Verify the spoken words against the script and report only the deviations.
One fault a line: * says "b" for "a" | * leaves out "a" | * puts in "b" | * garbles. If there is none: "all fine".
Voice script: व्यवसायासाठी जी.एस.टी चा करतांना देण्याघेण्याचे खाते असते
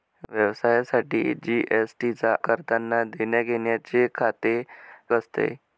all fine